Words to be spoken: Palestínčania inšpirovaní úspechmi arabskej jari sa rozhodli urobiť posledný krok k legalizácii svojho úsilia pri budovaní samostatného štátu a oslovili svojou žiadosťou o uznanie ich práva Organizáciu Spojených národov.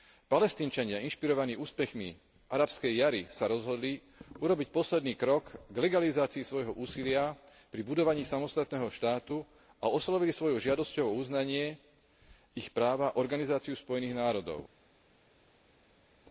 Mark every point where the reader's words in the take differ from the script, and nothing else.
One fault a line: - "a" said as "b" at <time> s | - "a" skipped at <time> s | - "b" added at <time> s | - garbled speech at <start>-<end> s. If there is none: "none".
none